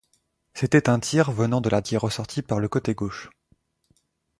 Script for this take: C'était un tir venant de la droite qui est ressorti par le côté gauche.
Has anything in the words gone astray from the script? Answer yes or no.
yes